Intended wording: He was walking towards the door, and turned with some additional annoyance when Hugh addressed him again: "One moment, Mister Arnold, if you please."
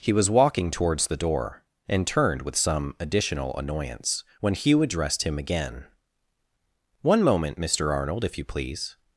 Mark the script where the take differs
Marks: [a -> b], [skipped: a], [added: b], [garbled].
He was walking towards the door, and turned with some additional annoyance when Hugh addressed him again: "One moment, Mister Arnold, if you please."